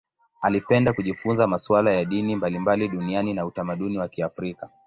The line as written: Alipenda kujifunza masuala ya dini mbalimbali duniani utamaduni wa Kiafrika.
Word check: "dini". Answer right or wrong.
right